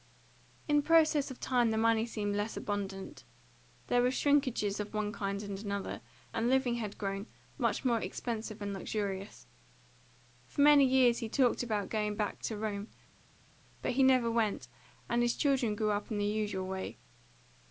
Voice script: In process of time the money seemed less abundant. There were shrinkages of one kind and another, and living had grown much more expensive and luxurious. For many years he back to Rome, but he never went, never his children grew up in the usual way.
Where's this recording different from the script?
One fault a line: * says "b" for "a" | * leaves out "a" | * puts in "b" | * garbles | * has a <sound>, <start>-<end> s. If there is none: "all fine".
* puts in "talked about going"
* says "and" for "never"